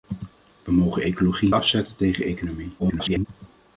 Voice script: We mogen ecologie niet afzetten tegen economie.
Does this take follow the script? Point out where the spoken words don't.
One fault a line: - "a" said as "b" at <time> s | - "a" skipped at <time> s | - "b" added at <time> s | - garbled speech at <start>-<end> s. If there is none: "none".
- "niet" skipped at 1.5 s
- garbled speech at 2.8-3.3 s